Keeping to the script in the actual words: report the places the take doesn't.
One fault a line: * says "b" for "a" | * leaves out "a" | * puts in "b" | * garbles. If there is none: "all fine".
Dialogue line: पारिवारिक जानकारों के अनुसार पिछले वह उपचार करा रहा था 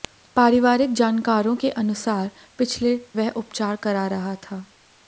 all fine